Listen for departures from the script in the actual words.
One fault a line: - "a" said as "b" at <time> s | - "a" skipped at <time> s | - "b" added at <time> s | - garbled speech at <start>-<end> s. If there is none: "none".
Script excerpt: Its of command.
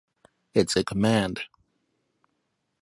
none